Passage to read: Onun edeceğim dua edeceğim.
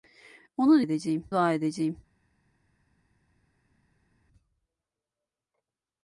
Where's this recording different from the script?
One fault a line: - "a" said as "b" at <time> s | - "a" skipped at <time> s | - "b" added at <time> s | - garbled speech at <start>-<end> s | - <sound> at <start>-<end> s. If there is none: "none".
none